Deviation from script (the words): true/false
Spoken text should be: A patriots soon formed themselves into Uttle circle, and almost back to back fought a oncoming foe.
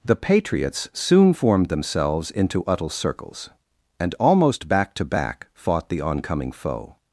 true